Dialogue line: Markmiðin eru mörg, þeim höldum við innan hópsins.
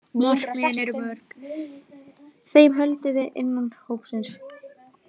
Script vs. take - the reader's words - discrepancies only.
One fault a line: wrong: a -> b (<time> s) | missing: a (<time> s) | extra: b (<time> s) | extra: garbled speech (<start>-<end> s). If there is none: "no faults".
no faults